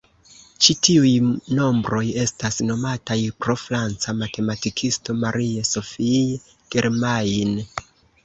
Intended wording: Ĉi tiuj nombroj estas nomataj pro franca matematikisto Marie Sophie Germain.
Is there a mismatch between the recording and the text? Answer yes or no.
no